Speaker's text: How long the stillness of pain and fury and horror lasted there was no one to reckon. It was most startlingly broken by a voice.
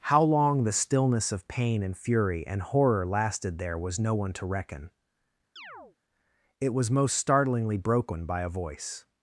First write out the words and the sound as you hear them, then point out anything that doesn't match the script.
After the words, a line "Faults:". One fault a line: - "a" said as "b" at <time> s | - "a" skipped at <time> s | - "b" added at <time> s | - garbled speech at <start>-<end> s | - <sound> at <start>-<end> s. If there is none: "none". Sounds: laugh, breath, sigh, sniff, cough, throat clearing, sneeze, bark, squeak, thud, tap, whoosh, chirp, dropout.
How long the stillness of pain and fury and horror lasted there was no one to reckon. It was most startlingly broken by a voice.
Faults:
- chirp at 5.6-6.0 s